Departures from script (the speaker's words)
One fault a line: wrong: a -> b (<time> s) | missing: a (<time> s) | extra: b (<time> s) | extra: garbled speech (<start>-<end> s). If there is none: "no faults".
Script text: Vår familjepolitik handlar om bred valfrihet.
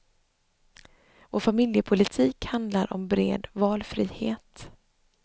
no faults